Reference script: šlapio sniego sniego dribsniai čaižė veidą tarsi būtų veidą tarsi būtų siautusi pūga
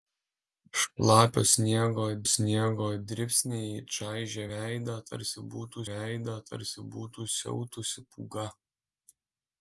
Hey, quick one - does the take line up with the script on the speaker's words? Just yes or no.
yes